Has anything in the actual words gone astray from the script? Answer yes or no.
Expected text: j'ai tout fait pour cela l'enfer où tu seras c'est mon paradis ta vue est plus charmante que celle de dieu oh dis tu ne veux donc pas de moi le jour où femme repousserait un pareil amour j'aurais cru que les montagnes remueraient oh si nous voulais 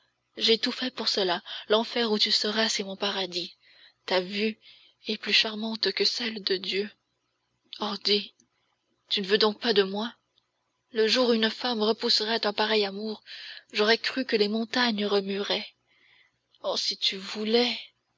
yes